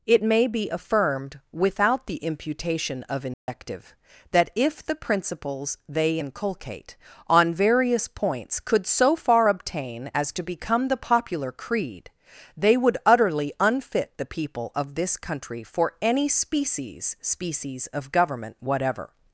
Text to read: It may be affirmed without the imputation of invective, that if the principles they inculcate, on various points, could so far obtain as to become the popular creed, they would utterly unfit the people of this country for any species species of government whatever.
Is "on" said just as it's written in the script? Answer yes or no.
yes